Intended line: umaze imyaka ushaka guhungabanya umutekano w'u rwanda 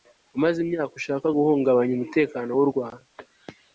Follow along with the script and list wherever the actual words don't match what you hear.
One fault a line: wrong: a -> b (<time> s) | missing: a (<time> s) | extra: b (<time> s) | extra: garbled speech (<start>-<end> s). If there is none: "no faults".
no faults